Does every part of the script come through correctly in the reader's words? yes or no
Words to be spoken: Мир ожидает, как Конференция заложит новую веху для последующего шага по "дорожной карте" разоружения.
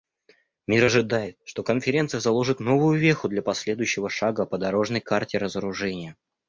no